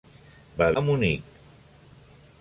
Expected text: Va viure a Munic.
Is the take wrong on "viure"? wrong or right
wrong